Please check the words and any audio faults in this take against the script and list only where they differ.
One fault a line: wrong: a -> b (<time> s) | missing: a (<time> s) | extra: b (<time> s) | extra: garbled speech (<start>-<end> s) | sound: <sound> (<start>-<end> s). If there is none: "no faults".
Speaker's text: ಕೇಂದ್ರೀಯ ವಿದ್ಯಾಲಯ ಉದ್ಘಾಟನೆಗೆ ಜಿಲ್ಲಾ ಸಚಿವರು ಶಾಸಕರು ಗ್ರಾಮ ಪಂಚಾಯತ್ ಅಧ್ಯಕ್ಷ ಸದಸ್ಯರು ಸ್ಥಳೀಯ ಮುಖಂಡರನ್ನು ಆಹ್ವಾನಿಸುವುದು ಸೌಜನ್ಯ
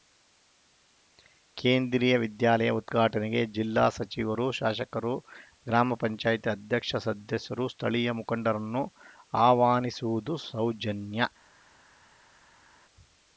no faults